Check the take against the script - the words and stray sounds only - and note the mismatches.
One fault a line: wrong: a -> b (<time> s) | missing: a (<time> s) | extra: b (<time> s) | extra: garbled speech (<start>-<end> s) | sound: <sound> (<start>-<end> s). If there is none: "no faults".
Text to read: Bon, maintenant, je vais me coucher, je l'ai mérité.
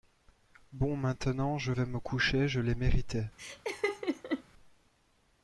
sound: laugh (3.4-4.4 s)